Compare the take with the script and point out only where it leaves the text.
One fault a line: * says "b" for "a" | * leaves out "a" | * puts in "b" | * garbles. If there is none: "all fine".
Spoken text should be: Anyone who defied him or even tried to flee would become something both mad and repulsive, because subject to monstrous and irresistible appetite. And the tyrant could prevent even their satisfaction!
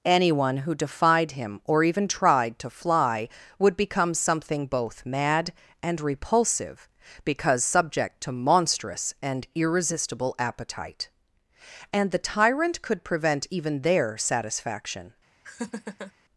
* says "fly" for "flee"